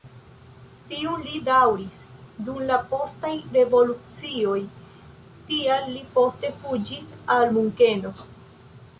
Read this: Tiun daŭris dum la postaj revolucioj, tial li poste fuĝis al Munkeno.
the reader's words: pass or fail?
fail